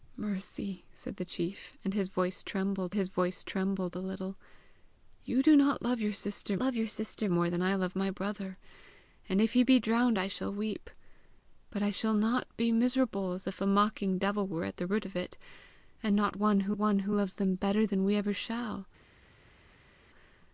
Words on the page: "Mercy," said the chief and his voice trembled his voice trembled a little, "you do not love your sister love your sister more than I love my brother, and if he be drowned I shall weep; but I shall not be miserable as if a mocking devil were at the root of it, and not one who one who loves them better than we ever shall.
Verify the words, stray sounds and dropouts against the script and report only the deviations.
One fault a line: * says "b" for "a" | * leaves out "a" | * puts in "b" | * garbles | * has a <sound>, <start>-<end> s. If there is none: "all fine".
all fine